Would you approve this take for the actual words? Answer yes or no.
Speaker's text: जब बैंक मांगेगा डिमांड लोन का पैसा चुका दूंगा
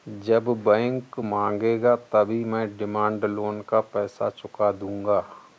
no